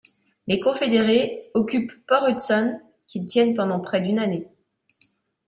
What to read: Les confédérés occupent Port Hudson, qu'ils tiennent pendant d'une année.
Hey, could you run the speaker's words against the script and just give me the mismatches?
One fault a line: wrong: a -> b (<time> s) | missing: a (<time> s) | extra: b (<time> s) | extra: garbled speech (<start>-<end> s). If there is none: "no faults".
extra: près (3.8 s)